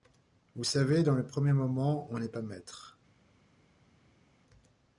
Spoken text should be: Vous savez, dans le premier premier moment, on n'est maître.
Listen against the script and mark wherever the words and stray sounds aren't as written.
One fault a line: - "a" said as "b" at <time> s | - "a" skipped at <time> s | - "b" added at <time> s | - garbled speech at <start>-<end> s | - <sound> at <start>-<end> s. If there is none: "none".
- "premier" skipped at 1.5 s
- "pas" added at 2.3 s